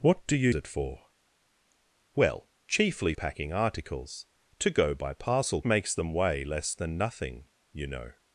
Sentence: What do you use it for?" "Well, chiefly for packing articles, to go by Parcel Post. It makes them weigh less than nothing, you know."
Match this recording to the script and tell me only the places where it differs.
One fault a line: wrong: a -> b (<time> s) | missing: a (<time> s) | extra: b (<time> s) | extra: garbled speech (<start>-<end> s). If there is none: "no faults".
missing: use (0.5 s)
missing: for (3.1 s)
missing: Post It (5.6 s)